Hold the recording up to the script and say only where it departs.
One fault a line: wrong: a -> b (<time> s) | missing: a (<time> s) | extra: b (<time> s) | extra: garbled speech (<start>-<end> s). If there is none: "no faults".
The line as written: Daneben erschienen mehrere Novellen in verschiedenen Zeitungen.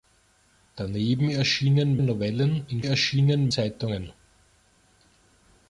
missing: mehrere (2.0 s)
wrong: verschiedenen -> erschienen (2.8 s)